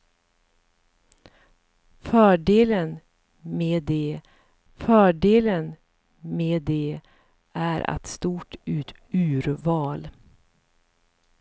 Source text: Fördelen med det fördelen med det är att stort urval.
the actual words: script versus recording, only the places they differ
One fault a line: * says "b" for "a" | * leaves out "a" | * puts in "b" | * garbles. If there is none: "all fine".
all fine